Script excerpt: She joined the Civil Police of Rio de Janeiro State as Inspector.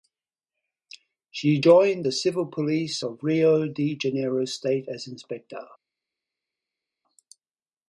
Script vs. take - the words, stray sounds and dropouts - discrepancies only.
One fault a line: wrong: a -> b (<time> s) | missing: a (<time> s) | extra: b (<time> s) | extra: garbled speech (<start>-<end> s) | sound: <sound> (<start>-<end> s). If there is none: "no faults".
no faults